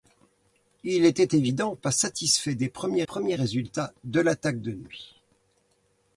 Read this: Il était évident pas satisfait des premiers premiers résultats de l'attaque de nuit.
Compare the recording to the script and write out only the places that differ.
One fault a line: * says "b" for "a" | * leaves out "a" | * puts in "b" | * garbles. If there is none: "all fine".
all fine